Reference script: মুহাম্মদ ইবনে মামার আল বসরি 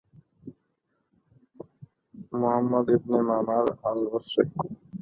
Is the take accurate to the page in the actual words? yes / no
yes